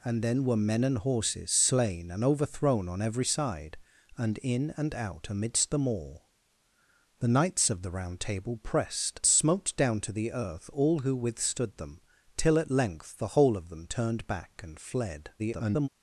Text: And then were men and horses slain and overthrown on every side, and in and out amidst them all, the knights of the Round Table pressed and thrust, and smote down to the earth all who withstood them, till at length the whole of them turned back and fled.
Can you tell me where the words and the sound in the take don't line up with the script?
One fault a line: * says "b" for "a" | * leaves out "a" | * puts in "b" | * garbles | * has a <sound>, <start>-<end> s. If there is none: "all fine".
* leaves out "and thrust and"
* garbles